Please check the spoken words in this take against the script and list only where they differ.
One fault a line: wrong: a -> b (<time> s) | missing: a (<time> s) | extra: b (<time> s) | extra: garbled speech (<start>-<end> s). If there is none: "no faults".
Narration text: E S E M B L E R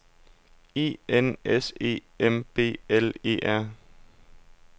extra: N (1.1 s)